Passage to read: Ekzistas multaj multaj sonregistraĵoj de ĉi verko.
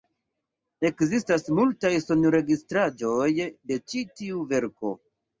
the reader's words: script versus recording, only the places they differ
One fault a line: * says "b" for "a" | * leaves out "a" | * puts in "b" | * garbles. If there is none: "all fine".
* leaves out "multaj"
* puts in "tiu"